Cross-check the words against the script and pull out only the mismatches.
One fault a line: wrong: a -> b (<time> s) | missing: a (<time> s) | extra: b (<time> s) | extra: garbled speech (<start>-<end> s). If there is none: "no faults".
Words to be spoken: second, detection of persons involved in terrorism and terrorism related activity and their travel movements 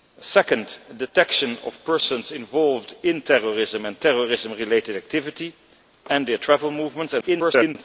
extra: garbled speech (7.2-7.8 s)